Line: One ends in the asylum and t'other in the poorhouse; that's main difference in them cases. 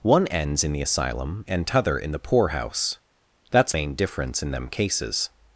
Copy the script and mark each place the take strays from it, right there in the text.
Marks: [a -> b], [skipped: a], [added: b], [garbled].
One ends in the asylum and t'other in the poorhouse; that's main difference in them cases.